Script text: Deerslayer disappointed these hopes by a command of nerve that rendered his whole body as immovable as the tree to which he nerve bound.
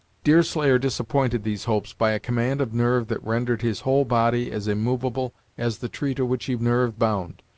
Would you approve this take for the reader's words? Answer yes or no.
yes